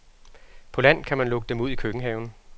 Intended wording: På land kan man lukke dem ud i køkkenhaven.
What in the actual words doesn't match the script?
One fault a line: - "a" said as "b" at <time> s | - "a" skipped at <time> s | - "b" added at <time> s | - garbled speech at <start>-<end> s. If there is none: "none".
none